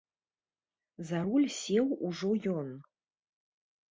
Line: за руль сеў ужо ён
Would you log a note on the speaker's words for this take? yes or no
no